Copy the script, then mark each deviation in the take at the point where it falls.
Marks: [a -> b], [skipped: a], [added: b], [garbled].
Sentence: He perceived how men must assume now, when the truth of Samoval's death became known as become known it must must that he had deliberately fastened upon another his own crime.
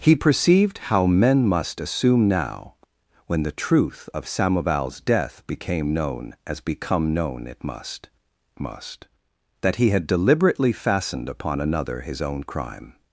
He perceived how men must assume now, when the truth of Samoval's death became known as become known it must must that he had deliberately fastened upon another his own crime.